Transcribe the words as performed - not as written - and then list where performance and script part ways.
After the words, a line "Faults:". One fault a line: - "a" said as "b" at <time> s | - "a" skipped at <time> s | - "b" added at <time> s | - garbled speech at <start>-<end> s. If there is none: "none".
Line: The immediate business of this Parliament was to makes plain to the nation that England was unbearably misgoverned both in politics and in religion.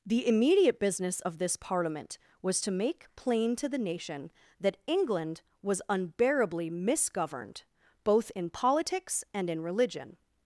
The immediate business of this Parliament was to make plain to the nation that England was unbearably misgoverned both in politics and in religion.
Faults:
- "makes" said as "make" at 2.7 s